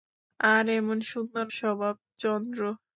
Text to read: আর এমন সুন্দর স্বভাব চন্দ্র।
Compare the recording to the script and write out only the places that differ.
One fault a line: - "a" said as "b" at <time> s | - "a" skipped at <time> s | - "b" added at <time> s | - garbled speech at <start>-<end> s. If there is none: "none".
none